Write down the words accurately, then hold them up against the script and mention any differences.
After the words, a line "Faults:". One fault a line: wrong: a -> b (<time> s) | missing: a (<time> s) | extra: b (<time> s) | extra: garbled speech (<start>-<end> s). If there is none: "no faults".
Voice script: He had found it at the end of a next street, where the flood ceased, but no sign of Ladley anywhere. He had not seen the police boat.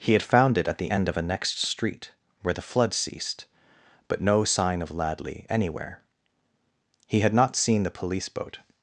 He had found it at the end of a next street, where the flood ceased, but no sign of Ladley anywhere. He had not seen the police boat.
Faults:
no faults